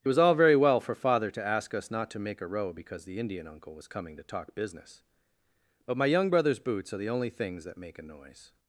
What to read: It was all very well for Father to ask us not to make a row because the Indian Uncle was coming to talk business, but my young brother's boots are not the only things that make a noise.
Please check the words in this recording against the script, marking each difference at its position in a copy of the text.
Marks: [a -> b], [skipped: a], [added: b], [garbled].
It was all very well for Father to ask us not to make a row because the Indian Uncle was coming to talk business, but my young brother's boots are [skipped: not] the only things that make a noise.